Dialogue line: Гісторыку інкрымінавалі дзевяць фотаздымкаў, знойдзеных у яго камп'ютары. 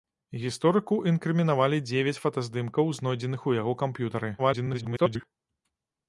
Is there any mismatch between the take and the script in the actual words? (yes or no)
yes